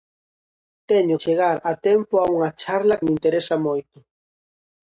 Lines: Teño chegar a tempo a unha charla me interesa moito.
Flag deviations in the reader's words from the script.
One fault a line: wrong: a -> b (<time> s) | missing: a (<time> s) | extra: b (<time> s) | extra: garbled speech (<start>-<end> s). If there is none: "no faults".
no faults